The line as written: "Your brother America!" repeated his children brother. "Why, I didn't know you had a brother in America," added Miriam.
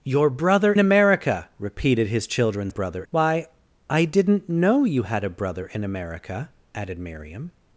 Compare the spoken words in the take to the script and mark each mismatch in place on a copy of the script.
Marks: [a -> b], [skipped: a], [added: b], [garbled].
"Your brother America!" repeated his children brother. "Why, I didn't know you had a brother in America," added Miriam.